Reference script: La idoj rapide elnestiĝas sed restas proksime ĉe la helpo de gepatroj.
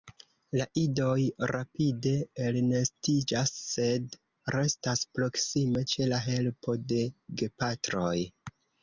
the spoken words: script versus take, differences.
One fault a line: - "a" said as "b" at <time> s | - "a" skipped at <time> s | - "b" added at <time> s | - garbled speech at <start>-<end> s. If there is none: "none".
none